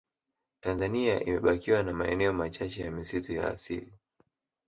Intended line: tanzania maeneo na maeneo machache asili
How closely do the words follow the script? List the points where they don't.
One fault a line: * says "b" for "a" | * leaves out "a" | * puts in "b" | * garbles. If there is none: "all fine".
* says "imebakiwa" for "maeneo"
* puts in "ya misitu ya"